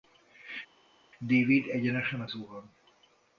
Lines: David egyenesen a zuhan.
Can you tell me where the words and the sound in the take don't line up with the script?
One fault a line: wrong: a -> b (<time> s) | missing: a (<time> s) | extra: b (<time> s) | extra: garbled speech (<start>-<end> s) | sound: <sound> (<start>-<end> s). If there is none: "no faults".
no faults